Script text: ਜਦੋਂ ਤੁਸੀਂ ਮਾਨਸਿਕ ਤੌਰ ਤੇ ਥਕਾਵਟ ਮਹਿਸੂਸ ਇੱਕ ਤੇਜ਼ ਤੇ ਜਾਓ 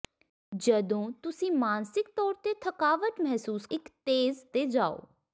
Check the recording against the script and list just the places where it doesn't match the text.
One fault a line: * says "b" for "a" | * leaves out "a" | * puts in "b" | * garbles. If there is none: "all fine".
all fine